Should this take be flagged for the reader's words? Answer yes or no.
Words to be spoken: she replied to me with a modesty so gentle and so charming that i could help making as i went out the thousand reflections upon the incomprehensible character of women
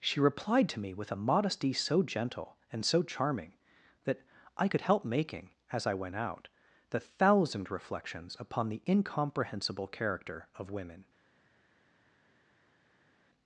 no